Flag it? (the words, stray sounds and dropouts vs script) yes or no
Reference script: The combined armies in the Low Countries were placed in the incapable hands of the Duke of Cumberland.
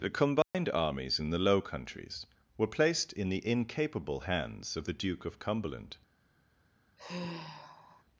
yes